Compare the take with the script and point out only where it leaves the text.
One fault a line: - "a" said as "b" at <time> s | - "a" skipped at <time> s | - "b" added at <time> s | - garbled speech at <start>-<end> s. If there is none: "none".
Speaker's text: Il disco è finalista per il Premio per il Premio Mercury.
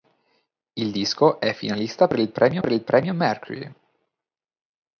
none